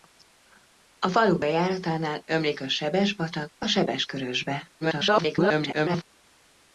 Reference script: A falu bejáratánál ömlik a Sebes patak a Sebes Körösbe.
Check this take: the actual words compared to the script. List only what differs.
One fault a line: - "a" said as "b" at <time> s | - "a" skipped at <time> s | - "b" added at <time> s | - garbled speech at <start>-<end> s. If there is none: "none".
- garbled speech at 4.8-6.0 s